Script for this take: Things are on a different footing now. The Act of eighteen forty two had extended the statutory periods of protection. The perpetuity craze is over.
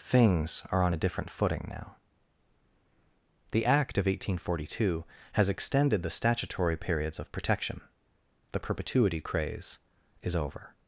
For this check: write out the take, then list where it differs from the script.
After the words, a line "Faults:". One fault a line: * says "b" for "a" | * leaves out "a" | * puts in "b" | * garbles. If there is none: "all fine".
Things are on a different footing now. The Act of eighteen forty two has extended the statutory periods of protection. The perpetuity craze is over.
Faults:
* says "has" for "had"